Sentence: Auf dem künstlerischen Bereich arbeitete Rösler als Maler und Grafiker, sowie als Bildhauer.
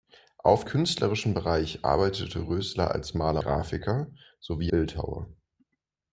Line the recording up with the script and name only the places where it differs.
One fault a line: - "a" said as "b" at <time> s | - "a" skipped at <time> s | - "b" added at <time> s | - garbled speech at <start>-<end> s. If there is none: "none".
- "dem" skipped at 0.7 s
- "und" skipped at 3.4 s
- "als" skipped at 4.7 s